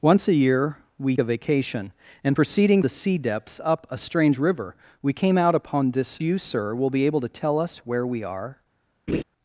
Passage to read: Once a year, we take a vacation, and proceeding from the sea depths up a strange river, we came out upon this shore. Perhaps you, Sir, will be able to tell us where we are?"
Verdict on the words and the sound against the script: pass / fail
fail